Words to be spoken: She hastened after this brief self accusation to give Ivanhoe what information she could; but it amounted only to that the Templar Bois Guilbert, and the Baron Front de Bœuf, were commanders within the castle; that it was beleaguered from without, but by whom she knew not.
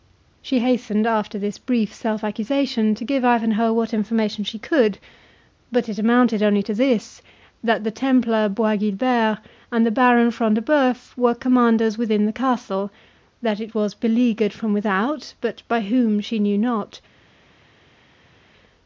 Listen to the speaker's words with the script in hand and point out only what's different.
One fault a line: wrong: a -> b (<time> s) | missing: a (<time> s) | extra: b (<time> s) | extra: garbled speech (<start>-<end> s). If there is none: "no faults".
extra: this (6.7 s)